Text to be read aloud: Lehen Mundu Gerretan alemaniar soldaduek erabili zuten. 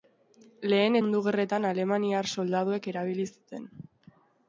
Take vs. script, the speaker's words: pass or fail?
pass